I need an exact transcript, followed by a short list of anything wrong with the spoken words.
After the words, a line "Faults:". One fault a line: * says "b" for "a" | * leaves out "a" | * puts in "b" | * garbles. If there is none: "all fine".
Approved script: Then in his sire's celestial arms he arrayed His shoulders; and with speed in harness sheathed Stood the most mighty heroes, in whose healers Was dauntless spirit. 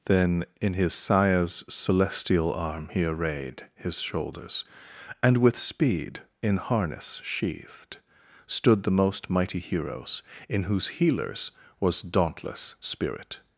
Then in his sire's celestial arm he arrayed His shoulders; and with speed in harness sheathed Stood the most mighty heroes, in whose healers Was dauntless spirit.
Faults:
* says "arm" for "arms"